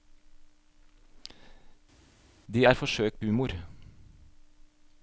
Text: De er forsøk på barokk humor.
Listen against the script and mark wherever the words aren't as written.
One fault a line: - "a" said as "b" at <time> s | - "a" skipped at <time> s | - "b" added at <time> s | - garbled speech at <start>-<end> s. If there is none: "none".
- "på barokk" skipped at 3.2 s